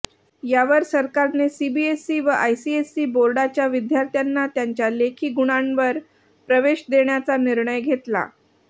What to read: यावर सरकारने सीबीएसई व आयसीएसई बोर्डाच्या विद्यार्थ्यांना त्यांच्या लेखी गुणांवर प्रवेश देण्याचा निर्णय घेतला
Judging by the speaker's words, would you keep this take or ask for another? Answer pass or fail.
pass